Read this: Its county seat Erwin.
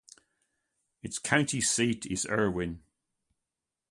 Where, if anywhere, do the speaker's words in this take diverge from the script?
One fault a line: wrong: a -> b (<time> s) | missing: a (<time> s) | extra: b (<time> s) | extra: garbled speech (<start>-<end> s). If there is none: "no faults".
extra: is (2.1 s)